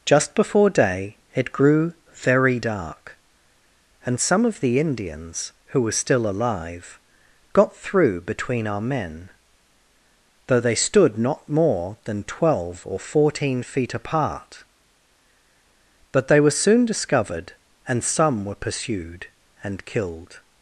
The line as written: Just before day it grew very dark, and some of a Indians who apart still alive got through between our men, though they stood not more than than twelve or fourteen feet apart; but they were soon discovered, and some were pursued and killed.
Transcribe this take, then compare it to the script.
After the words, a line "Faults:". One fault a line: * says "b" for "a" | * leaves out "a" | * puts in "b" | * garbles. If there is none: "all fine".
Just before day it grew very dark, and some of the Indians who were still alive got through between our men, though they stood not more than twelve or fourteen feet apart; but they were soon discovered, and some were pursued and killed.
Faults:
* says "the" for "a"
* says "were" for "apart"
* leaves out "than"